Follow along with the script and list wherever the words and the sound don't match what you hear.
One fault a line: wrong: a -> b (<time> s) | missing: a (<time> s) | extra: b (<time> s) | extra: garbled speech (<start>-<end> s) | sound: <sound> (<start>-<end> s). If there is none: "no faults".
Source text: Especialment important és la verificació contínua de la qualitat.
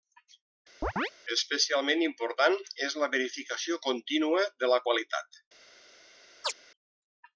sound: chirp (0.8-1.1 s)
sound: chirp (6.4-6.5 s)